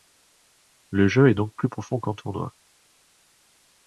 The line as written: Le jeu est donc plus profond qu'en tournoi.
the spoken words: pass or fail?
pass